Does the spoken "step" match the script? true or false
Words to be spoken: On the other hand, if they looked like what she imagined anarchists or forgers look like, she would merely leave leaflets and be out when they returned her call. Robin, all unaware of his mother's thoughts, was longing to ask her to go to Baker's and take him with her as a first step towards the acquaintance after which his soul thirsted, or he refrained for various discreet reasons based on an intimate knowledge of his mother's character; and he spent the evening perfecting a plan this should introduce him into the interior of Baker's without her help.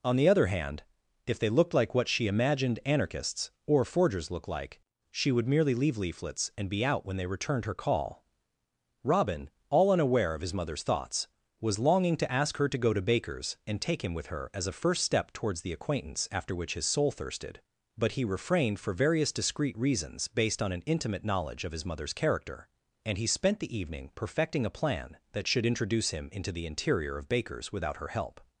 true